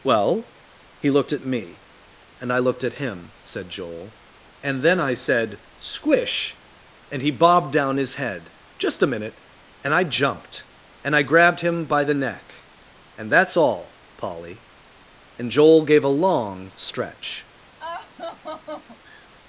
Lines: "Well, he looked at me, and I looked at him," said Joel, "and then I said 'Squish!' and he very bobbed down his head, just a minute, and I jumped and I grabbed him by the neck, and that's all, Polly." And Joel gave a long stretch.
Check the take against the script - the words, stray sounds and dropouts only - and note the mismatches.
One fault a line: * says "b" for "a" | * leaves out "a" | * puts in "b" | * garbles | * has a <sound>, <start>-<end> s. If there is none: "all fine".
* leaves out "very"
* has a laugh, 17.8-19.3 s